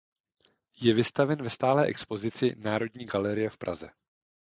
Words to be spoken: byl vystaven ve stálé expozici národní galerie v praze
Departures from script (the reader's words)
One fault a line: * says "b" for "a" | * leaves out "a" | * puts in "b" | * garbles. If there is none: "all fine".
* says "je" for "byl"